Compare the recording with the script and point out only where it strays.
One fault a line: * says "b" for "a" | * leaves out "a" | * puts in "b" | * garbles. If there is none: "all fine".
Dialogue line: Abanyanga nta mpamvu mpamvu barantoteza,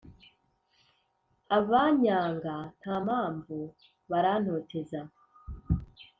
* leaves out "mpamvu"